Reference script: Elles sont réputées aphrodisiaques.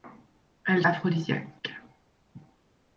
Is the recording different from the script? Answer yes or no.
yes